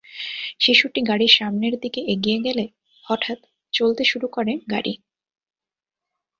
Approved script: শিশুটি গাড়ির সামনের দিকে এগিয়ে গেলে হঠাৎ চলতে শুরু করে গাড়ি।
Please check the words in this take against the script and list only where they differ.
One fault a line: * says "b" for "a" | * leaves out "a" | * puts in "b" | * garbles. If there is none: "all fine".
all fine